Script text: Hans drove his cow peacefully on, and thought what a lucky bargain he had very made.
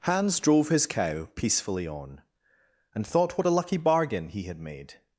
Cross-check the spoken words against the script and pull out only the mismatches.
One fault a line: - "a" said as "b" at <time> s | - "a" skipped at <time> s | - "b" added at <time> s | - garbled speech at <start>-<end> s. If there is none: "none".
- "very" skipped at 4.6 s